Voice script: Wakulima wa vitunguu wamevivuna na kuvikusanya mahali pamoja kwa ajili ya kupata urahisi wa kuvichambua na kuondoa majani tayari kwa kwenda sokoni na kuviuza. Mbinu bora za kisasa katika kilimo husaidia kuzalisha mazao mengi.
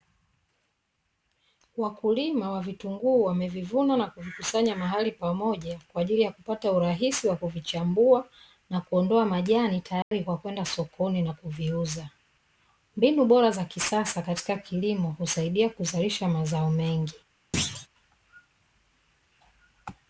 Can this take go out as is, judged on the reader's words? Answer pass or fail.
pass